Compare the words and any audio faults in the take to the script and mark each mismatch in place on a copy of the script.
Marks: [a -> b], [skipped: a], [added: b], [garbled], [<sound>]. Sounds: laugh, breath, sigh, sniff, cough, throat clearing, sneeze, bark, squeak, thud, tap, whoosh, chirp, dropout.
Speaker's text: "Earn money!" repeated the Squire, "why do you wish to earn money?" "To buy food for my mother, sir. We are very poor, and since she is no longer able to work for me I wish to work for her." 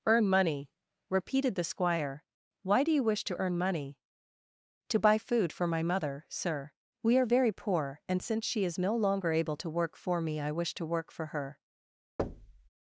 "Earn money!" repeated the Squire, "why do you wish to earn money?" "To buy food for my mother, sir. We are very poor, and since she is no longer able to work for me I wish to work for her." [thud]